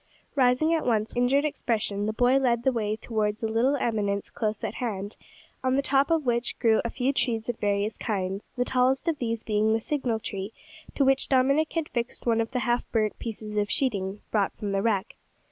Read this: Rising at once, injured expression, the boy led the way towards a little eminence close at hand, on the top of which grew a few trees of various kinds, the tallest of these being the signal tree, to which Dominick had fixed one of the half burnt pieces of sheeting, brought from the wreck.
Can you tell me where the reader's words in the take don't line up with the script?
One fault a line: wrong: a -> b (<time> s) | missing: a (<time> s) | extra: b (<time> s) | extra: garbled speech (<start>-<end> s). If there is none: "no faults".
no faults